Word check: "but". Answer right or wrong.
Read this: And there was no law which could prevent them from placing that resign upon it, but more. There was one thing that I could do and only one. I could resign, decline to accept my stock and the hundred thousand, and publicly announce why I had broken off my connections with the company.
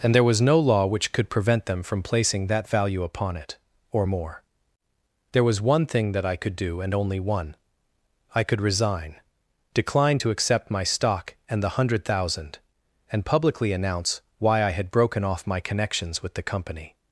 wrong